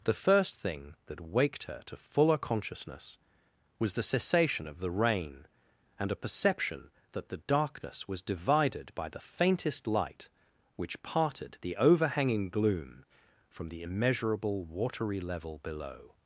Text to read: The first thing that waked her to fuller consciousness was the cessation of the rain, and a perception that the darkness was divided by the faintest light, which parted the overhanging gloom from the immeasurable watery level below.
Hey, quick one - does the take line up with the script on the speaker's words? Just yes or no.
yes